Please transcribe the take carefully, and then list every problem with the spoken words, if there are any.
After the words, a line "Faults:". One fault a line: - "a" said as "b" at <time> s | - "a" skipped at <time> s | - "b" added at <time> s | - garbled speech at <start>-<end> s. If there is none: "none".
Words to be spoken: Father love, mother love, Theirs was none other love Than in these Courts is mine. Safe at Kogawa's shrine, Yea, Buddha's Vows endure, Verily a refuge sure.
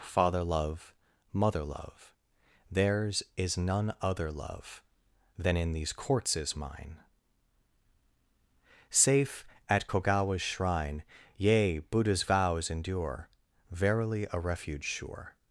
Father love, mother love, Theirs is none other love Than in these Courts is mine. Safe at Kogawa's shrine, Yea, Buddha's Vows endure, Verily a refuge sure.
Faults:
- "was" said as "is" at 3.4 s